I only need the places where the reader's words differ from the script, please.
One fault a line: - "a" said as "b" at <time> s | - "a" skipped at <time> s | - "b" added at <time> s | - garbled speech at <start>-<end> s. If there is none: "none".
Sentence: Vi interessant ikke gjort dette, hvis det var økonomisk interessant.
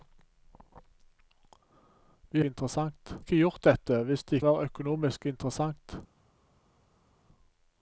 none